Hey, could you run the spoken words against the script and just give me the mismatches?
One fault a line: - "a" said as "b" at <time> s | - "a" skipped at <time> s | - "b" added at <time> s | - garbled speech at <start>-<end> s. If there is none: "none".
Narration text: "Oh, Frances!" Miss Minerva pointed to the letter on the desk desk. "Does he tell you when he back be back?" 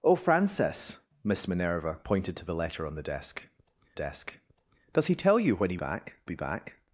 none